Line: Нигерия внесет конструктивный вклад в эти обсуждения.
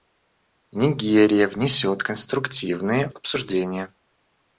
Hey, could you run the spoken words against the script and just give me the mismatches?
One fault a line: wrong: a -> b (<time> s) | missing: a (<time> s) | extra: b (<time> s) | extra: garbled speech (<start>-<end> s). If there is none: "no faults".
missing: вклад в эти (3.1 s)